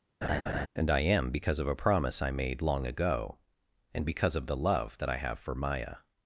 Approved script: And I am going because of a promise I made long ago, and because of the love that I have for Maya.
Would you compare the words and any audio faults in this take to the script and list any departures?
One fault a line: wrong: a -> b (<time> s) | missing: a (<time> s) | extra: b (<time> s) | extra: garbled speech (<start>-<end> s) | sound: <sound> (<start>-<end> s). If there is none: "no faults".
sound: laugh (0.2-0.7 s)
missing: going (1.3 s)